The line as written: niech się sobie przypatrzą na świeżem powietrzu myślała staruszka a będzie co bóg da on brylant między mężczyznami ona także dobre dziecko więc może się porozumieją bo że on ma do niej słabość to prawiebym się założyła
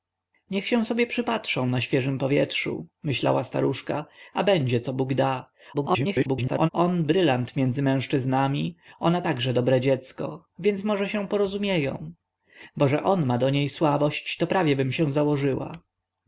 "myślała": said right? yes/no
yes